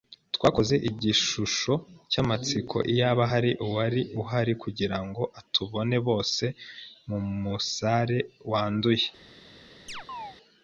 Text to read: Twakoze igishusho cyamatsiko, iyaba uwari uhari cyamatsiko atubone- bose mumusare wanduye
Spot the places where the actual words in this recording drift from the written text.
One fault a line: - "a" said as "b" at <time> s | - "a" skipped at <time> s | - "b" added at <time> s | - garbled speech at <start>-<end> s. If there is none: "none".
- "hari" added at 3.3 s
- "cyamatsiko" said as "kugirango" at 4.6 s